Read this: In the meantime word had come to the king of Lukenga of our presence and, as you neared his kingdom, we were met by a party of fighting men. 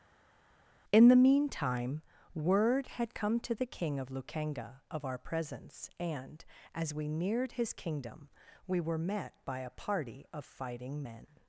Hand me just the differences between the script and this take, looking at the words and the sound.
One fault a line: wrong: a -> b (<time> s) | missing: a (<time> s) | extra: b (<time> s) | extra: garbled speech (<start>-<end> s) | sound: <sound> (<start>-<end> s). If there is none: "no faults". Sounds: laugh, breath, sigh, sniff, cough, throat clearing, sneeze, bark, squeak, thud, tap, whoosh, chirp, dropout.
wrong: you -> we (6.9 s)